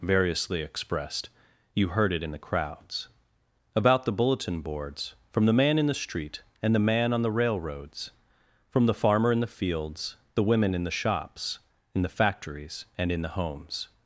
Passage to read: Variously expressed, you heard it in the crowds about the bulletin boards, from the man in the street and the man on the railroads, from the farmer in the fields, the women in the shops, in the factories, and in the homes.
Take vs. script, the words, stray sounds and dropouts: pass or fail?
pass